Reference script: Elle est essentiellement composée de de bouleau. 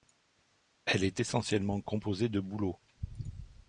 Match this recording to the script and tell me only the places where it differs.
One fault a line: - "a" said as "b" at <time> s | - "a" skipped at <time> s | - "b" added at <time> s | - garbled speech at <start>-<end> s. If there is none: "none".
- "de" skipped at 2.4 s